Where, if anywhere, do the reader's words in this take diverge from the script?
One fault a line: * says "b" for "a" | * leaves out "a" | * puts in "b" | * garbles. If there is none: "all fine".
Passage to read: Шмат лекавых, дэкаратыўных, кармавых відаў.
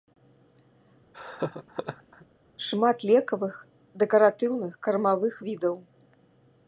all fine